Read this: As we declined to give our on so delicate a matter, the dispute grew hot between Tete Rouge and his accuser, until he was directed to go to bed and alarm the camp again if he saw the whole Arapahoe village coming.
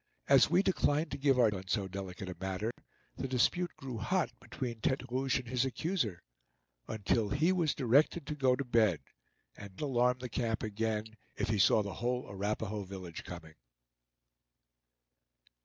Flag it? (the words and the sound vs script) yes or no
yes